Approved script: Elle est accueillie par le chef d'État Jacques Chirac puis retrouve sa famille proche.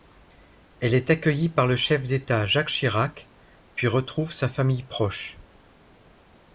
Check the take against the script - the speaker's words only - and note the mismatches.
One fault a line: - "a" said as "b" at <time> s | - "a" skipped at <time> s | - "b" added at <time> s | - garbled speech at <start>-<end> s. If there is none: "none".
none